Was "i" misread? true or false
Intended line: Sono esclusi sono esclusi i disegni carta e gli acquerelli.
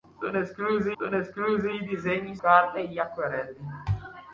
false